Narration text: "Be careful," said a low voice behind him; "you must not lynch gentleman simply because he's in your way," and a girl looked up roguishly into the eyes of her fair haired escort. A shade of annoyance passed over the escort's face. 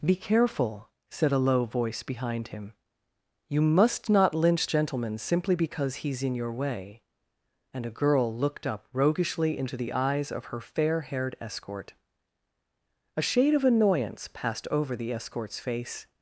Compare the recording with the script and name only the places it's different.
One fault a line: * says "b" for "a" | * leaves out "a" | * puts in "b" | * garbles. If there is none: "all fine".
all fine